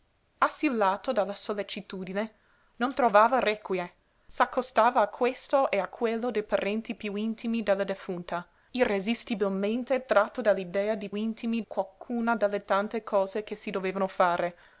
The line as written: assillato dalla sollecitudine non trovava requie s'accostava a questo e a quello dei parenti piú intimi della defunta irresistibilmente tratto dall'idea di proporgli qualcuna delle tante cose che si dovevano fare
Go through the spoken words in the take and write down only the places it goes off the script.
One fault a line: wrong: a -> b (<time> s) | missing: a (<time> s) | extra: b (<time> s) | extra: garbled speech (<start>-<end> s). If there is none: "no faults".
wrong: proporgli -> intimi (11.1 s)